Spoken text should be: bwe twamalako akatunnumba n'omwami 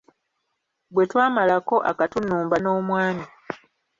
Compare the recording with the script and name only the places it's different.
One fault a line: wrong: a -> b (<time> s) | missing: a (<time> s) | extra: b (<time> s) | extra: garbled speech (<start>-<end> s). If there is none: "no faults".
no faults